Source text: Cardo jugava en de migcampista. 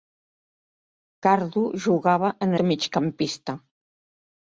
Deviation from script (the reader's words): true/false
false